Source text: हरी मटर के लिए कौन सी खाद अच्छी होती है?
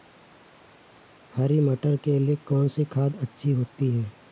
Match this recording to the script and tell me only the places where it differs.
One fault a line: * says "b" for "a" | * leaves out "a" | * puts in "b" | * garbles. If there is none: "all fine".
all fine